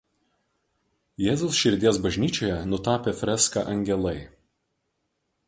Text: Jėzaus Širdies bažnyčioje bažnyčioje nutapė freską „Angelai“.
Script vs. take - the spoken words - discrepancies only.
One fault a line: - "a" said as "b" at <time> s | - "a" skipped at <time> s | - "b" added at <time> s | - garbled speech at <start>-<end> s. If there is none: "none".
- "bažnyčioje" skipped at 2.6 s